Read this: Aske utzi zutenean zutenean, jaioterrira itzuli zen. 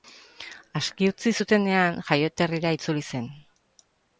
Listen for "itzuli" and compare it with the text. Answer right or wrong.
right